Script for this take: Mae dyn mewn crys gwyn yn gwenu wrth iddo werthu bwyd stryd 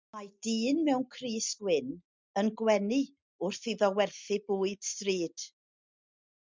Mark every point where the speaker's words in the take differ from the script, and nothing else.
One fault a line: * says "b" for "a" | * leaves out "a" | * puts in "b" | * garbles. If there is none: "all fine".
all fine